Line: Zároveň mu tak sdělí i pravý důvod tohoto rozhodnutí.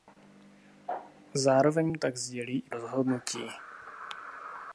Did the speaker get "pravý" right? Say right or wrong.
wrong